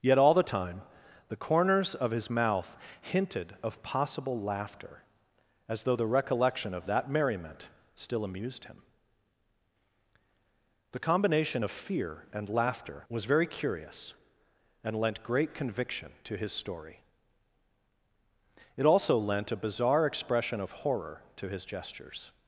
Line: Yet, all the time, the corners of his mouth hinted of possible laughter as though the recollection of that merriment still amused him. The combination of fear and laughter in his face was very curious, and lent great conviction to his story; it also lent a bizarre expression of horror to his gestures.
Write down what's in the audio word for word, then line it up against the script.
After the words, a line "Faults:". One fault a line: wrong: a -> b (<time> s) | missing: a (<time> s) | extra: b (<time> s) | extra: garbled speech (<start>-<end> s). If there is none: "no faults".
Yet, all the time, the corners of his mouth hinted of possible laughter as though the recollection of that merriment still amused him. The combination of fear and laughter was very curious, and lent great conviction to his story; it also lent a bizarre expression of horror to his gestures.
Faults:
missing: in his face (13.1 s)